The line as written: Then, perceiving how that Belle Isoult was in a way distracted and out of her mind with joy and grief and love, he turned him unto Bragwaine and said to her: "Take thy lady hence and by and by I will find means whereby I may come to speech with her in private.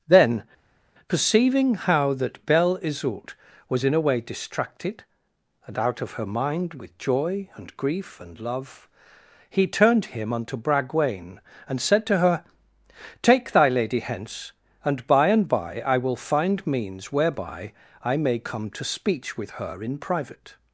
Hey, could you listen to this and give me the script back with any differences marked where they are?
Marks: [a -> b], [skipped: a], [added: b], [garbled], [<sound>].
Then, perceiving how that Belle Isoult was in a way distracted and out of her mind with joy and grief and love, he turned him unto Bragwaine and said to her: "Take thy lady hence and by and by I will find means whereby I may come to speech with her in private.